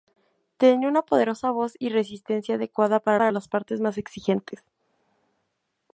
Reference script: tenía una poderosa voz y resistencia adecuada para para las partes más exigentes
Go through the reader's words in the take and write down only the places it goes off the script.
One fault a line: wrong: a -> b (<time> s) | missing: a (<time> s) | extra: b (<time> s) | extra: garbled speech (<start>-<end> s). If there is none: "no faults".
no faults